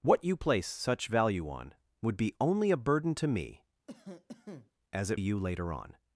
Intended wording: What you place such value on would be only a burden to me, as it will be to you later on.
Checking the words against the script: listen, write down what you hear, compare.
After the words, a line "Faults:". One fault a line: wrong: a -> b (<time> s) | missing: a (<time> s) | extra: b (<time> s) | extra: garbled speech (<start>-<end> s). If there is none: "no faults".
What you place such value on would be only a burden to me, as it you later on.
Faults:
missing: will be to (5.2 s)